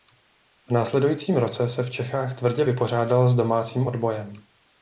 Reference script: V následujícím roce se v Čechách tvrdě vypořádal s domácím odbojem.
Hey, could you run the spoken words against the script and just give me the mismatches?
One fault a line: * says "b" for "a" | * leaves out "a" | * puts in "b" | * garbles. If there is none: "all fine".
all fine